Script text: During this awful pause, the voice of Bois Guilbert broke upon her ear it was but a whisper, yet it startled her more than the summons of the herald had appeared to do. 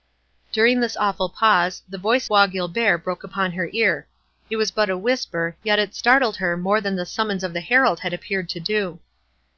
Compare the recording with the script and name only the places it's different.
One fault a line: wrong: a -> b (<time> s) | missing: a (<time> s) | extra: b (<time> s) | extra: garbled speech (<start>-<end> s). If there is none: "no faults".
missing: of (2.3 s)